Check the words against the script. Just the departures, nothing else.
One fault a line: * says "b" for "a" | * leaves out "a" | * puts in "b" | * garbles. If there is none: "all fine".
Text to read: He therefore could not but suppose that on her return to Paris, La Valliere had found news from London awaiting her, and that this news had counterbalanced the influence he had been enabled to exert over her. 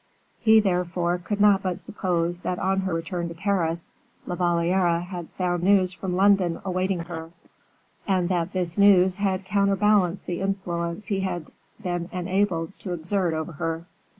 all fine